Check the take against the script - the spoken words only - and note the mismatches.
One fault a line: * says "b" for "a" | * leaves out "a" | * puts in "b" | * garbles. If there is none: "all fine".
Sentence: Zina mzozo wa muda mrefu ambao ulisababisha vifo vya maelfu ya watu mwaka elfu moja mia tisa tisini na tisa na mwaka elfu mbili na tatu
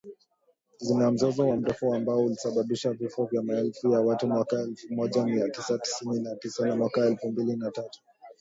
* leaves out "muda"